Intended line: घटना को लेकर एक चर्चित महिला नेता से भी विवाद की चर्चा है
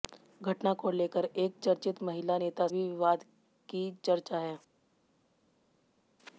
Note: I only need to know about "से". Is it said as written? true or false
false